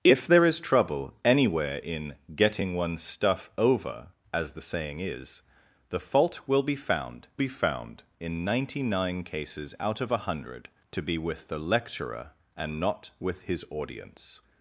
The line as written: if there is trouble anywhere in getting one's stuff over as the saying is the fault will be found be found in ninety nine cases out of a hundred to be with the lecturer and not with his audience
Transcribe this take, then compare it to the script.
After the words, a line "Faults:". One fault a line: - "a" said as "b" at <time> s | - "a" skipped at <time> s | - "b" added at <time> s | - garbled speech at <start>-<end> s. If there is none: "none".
if there is trouble anywhere in getting one's stuff over as the saying is the fault will be found be found in ninety nine cases out of a hundred to be with the lecturer and not with his audience
Faults:
none